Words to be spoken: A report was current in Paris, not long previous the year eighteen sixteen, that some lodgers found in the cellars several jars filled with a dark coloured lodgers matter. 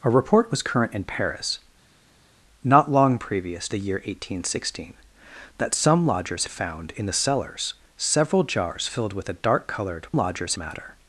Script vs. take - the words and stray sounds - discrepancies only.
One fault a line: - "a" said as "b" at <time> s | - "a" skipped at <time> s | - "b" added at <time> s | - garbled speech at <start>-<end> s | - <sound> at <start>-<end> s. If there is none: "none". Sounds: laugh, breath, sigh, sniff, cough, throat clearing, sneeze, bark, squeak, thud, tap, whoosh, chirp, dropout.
none